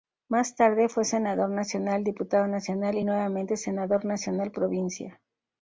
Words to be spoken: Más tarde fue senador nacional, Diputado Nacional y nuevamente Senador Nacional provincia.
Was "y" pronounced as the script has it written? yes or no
yes